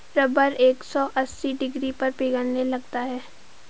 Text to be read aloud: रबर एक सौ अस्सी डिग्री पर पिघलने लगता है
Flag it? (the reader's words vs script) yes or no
no